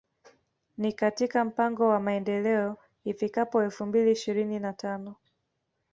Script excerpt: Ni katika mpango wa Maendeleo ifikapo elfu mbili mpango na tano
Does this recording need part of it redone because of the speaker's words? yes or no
yes